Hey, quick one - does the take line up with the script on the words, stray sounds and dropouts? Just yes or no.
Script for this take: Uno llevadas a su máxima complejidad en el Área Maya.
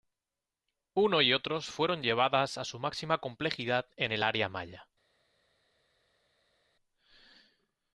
no